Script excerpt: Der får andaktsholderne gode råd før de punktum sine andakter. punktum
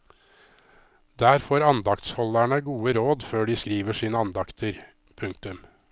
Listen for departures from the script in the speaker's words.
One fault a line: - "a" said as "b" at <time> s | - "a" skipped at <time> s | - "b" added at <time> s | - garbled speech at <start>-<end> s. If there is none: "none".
- "punktum" said as "skriver" at 3.6 s